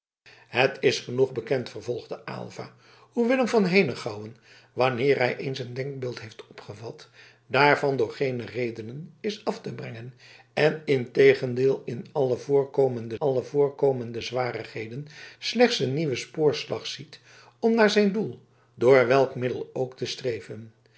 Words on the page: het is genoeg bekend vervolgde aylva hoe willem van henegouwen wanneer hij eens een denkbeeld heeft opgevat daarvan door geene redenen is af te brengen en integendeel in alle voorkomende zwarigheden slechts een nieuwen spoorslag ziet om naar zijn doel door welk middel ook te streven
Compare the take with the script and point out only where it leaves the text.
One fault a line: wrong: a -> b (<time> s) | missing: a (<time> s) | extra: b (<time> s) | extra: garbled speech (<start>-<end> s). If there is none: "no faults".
extra: alle voorkomende (13.2 s)